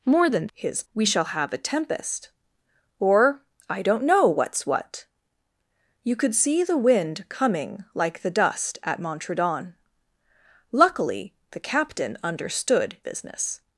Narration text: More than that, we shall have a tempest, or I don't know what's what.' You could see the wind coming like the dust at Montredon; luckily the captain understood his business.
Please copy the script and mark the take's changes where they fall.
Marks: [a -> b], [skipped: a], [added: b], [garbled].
More than [that, -> his] we shall have a tempest, or I don't know what's what.' You could see the wind coming like the dust at Montredon; luckily the captain understood [skipped: his] business.